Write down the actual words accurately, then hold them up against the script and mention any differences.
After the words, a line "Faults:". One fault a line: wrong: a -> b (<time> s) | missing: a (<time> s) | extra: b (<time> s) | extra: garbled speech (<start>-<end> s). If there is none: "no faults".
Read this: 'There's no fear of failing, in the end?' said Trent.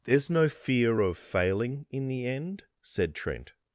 'There's no fear of failing, in the end?' said Trent.
Faults:
no faults